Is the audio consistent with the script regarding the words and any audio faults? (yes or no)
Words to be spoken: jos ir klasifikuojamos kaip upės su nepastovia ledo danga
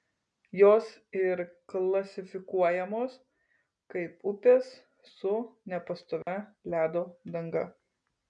no